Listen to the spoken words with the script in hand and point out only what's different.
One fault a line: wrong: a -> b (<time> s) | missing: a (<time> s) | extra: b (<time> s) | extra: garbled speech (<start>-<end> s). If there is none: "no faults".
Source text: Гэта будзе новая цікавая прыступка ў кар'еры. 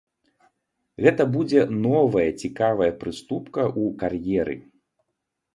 no faults